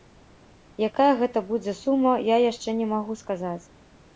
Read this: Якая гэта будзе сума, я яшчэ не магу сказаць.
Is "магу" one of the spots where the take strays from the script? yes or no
no